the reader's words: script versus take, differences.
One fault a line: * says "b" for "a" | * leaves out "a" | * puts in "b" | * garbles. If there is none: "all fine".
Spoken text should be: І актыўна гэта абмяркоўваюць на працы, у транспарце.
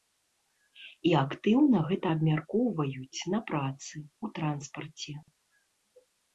all fine